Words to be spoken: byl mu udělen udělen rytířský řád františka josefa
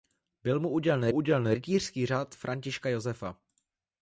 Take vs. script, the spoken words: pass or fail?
pass